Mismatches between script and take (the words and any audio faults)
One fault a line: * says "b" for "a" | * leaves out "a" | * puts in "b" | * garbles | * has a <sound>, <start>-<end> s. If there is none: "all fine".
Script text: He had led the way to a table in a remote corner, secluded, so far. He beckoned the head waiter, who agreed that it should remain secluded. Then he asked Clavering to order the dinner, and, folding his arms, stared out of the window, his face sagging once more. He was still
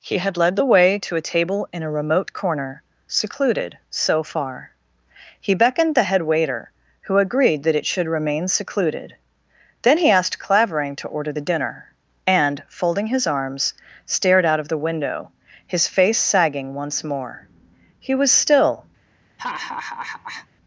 * has a laugh, 19.4-20.5 s